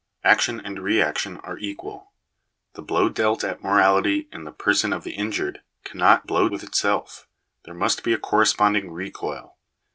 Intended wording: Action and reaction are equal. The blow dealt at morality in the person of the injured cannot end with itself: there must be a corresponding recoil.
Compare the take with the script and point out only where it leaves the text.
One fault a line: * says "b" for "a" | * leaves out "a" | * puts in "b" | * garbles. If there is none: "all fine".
* says "blow" for "end"